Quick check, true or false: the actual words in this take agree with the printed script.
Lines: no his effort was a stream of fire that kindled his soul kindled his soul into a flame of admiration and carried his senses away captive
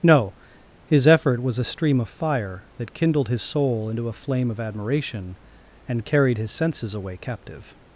false